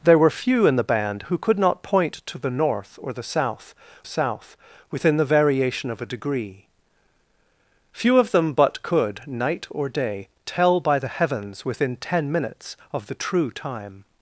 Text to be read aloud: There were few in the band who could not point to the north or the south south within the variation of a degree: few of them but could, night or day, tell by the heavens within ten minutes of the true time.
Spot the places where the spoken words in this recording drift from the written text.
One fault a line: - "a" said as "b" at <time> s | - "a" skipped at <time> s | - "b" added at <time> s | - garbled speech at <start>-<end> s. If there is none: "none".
none